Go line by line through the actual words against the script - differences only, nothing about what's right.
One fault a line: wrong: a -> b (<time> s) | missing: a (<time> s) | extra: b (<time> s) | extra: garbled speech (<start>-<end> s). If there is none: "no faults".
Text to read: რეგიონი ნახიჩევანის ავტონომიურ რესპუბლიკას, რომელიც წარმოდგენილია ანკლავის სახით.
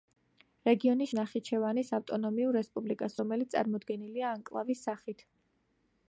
no faults